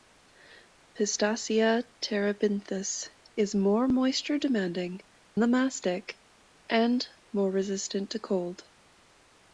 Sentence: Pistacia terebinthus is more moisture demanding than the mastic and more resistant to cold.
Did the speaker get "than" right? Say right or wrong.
wrong